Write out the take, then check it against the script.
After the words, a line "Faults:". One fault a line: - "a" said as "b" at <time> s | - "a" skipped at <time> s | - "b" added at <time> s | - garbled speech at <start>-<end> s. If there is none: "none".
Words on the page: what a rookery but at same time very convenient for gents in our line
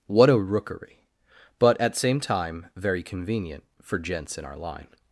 what a rookery but at same time very convenient for gents in our line
Faults:
none